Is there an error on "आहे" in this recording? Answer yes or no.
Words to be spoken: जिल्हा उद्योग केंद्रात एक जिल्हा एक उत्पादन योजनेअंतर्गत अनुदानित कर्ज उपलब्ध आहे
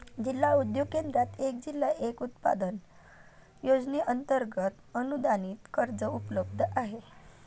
no